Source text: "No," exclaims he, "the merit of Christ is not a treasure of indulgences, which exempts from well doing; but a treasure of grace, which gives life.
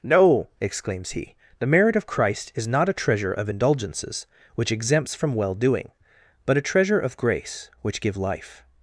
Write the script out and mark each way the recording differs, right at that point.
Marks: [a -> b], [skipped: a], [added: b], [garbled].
"No," exclaims he, "the merit of Christ is not a treasure of indulgences, which exempts from well doing; but a treasure of grace, which [gives -> give] life.